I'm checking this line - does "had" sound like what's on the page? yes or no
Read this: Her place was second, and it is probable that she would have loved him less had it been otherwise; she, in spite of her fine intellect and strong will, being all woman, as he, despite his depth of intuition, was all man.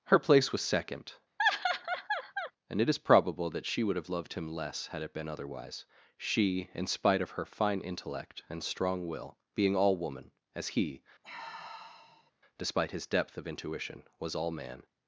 yes